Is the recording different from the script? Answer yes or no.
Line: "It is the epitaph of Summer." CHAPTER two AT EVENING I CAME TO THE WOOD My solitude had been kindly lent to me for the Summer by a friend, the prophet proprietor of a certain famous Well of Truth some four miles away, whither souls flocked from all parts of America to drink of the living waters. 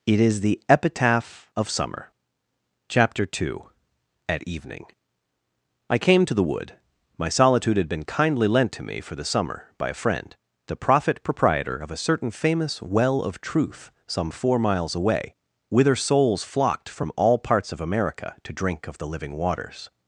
no